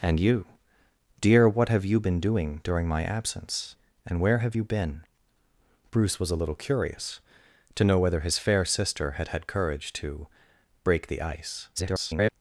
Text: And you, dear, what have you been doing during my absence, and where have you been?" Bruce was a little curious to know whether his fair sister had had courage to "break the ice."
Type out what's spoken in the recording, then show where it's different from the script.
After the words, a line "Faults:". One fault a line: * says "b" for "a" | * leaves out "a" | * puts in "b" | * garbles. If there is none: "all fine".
And you, dear, what have you been doing during my absence, and where have you been?" Bruce was a little curious to know whether his fair sister had had courage to "break the ice." [garbled]
Faults:
* garbles